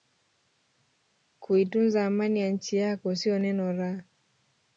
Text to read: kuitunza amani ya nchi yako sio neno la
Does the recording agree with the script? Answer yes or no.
yes